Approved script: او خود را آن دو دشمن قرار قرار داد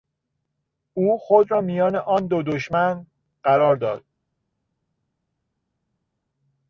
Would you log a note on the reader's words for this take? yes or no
yes